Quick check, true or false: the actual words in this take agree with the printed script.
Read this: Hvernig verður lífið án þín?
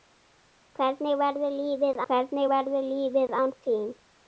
false